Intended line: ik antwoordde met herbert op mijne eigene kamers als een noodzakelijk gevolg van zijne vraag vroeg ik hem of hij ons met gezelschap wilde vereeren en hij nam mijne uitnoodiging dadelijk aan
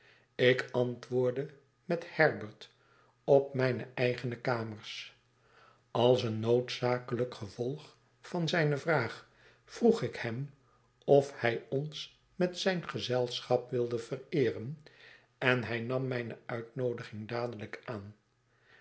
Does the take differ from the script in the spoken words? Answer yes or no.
yes